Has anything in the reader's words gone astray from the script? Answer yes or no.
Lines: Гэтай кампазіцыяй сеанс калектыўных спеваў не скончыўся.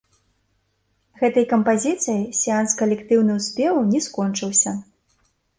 no